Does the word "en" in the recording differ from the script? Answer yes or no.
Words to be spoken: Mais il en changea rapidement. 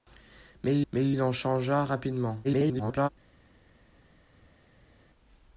no